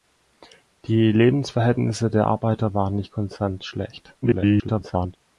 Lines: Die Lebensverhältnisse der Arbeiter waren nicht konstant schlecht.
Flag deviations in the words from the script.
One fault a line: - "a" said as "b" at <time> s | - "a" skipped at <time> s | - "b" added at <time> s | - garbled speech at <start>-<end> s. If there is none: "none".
- garbled speech at 4.2-5.2 s